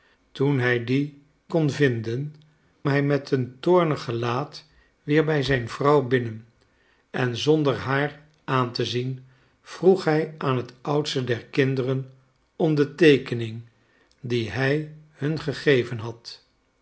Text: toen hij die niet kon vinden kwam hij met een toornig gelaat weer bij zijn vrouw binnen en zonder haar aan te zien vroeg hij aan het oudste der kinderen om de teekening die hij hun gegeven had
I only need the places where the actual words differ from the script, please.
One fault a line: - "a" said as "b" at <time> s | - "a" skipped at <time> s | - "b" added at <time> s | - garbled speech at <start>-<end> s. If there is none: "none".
- "niet" skipped at 1.2 s
- "kwam" skipped at 2.3 s